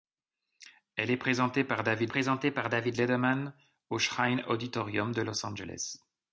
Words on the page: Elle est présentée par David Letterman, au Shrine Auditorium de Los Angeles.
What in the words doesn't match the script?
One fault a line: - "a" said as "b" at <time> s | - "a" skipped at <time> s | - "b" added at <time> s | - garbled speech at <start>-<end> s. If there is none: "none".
- "présentée par David" added at 2.1 s